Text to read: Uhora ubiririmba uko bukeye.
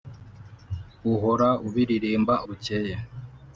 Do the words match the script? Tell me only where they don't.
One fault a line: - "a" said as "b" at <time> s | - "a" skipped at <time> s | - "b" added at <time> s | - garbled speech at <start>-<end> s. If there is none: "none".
- "uko" skipped at 2.3 s